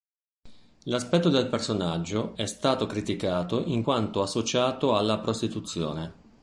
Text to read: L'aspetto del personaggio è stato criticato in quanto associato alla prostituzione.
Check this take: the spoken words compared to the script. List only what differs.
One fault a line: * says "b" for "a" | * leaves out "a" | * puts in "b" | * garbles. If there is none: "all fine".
all fine